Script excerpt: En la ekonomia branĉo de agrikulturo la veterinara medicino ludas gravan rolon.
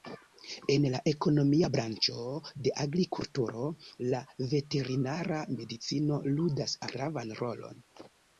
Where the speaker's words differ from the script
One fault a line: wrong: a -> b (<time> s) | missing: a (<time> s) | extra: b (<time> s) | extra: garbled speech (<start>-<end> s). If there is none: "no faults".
no faults